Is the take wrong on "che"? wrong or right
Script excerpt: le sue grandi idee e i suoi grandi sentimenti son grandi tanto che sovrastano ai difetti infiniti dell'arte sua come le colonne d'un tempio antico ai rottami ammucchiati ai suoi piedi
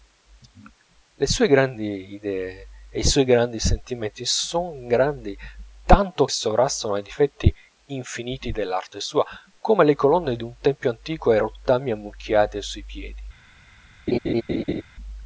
wrong